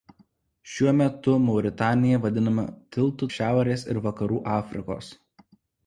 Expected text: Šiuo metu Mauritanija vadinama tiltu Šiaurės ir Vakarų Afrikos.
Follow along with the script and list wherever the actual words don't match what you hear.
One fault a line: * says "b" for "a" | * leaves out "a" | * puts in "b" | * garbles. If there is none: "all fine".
all fine